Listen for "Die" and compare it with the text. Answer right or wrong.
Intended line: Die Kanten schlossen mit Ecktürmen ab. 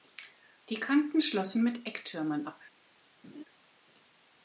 right